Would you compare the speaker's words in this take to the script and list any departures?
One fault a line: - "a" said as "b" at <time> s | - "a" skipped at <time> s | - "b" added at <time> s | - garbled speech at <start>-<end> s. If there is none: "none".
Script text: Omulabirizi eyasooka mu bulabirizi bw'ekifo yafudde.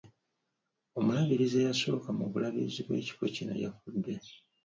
- "kino" added at 3.3 s